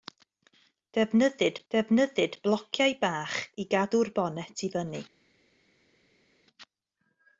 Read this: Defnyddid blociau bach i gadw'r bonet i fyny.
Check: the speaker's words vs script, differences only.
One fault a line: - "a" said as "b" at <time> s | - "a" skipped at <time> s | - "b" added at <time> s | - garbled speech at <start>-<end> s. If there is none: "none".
- "defnyddid" added at 1.7 s